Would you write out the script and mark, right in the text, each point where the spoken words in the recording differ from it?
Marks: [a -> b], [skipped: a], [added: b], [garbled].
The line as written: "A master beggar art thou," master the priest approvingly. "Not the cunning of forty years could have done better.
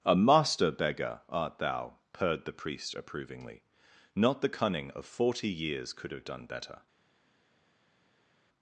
"A master beggar art thou," [master -> purred] the priest approvingly. "Not the cunning of forty years could have done better.